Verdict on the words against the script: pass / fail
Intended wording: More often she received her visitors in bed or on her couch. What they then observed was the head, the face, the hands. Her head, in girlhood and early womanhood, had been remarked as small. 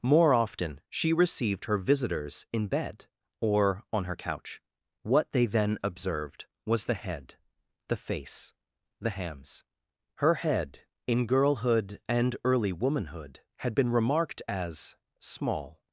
pass